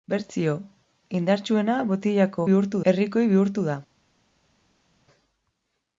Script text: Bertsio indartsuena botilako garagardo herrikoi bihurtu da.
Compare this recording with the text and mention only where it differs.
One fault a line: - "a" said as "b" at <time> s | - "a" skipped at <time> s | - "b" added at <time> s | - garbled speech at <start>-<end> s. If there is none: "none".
- "garagardo" said as "bihurtu" at 2.5 s